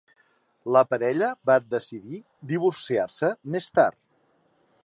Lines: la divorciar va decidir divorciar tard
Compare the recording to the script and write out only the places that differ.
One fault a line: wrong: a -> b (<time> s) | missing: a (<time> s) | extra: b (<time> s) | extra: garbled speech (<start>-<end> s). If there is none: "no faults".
wrong: divorciar -> parella (0.9 s)
extra: se més (3.1 s)